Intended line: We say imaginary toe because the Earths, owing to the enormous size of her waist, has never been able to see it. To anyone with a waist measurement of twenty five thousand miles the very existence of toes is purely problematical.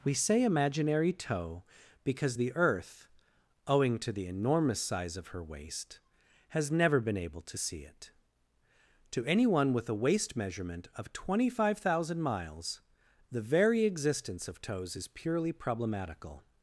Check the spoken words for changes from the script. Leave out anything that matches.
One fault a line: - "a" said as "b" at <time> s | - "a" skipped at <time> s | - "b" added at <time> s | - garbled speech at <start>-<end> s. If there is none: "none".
- "Earths" said as "Earth" at 2.6 s